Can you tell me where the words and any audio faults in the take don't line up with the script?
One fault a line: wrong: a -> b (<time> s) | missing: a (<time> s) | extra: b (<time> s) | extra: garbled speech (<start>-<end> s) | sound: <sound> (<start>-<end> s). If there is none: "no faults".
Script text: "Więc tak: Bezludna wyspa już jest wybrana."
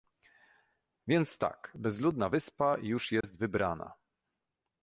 sound: dropout (3.2-3.2 s)